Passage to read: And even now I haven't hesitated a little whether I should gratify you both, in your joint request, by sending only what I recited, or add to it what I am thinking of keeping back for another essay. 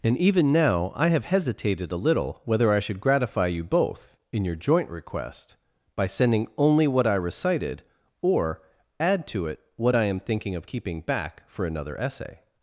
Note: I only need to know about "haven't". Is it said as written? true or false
false